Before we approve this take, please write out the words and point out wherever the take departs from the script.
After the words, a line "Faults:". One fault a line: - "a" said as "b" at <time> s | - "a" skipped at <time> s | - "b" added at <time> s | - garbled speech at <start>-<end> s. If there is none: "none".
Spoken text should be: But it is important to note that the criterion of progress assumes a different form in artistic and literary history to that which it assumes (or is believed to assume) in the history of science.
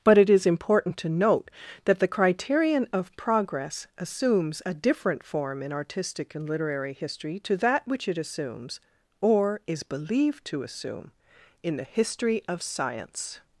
But it is important to note that the criterion of progress assumes a different form in artistic and literary history to that which it assumes (or is believed to assume) in the history of science.
Faults:
none